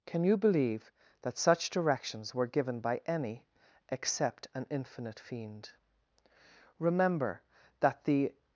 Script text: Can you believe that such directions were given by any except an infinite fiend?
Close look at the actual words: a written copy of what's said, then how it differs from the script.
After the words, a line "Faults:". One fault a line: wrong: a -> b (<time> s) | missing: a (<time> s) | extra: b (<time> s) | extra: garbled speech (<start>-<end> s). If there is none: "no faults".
Can you believe that such directions were given by any except an infinite fiend? Remember that the
Faults:
extra: Remember that the (6.8 s)